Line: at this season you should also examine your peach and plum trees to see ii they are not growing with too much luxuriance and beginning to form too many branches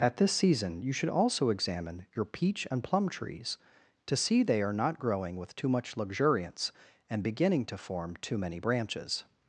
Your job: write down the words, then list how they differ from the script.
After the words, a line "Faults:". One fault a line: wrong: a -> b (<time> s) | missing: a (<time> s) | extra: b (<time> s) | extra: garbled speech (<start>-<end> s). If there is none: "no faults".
at this season you should also examine your peach and plum trees to see they are not growing with too much luxuriance and beginning to form too many branches
Faults:
missing: ii (4.4 s)